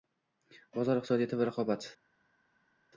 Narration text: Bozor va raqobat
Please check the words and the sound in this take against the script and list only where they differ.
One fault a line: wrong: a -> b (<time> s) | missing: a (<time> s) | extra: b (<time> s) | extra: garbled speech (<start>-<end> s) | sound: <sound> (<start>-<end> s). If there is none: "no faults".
extra: iqtisodiyoti (1.0 s)